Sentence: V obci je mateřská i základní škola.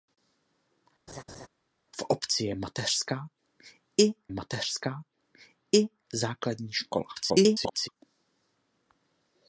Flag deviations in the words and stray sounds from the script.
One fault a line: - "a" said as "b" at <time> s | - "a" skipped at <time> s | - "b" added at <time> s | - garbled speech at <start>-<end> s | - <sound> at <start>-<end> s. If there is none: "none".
- laugh at 1.1-1.5 s
- "mateřská i" added at 4.3 s
- garbled speech at 7.1-7.9 s